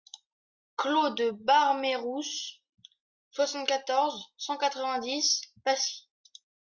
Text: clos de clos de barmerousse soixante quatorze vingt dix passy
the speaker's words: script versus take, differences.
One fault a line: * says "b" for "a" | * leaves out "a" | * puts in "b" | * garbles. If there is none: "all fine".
* leaves out "clos de"
* puts in "cent quatre"